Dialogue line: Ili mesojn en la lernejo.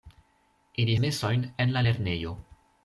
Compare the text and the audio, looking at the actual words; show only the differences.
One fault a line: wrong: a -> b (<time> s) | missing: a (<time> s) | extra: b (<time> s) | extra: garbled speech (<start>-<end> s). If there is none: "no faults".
no faults